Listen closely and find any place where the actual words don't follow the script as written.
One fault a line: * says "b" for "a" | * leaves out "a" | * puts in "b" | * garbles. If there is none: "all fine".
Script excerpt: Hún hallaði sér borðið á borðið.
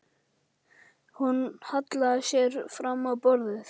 * says "fram" for "borðið"